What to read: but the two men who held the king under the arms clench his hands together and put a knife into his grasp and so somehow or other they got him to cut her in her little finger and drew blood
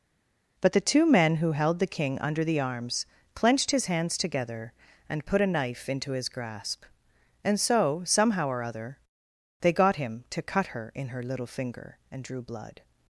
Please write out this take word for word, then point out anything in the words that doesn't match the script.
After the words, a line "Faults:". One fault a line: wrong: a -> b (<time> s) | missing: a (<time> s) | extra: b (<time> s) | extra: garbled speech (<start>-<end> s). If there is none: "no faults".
but the two men who held the king under the arms clenched his hands together and put a knife into his grasp and so somehow or other they got him to cut her in her little finger and drew blood
Faults:
wrong: clench -> clenched (3.4 s)